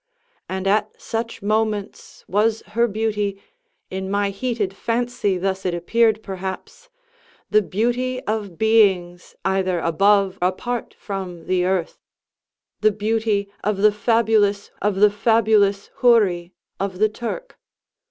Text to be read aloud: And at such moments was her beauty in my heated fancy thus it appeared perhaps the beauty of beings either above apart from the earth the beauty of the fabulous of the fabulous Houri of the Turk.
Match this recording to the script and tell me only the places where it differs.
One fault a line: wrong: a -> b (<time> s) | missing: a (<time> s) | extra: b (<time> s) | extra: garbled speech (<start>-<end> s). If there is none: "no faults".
no faults